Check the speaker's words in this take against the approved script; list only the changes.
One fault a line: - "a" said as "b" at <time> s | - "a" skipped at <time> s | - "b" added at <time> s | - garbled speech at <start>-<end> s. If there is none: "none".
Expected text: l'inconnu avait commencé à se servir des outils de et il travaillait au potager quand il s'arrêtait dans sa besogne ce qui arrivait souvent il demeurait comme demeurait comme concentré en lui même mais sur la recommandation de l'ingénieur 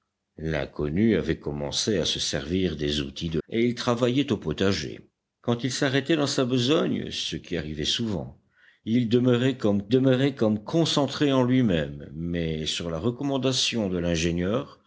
none